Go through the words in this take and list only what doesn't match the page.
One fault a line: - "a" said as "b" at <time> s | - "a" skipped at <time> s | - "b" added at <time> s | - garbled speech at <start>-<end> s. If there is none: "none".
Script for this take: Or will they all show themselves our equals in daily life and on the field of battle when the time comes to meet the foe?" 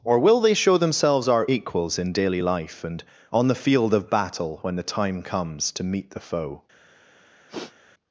- "all" skipped at 0.5 s